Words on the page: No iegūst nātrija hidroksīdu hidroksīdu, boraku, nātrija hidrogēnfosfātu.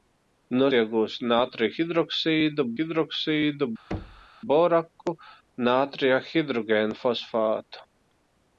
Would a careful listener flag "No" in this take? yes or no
no